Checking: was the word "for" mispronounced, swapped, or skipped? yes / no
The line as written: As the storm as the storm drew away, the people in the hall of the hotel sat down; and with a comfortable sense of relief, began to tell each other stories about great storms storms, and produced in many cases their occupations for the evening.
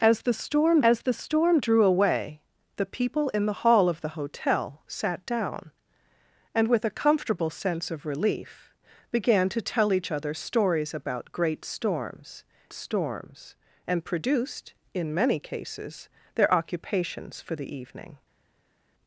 no